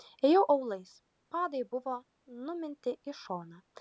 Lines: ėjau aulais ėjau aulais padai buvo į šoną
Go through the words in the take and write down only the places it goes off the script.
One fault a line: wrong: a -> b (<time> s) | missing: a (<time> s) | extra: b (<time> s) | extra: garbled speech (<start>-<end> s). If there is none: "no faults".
missing: ėjau aulais (0.9 s)
extra: numinti (2.5 s)